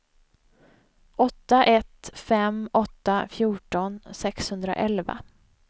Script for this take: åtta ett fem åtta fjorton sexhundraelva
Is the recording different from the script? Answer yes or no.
no